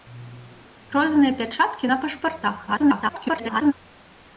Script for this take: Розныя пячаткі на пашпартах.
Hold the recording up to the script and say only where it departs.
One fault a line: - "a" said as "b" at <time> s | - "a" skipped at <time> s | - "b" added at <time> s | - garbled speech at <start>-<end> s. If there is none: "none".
- garbled speech at 2.7-3.7 s